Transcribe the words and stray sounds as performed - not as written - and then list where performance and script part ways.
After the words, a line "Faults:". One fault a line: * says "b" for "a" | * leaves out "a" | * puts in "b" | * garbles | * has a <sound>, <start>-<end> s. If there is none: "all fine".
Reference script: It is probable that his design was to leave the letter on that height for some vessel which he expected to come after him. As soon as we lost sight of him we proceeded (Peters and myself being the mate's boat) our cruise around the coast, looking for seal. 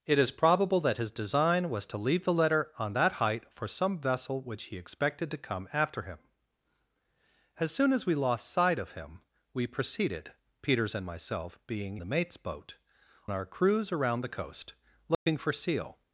It is probable that his design was to leave the letter on that height for some vessel which he expected to come after him. As soon as we lost sight of him we proceeded (Peters and myself being the mate's boat) our cruise around the coast, looking for seal.
Faults:
* has a dropout, 15.1-15.3 s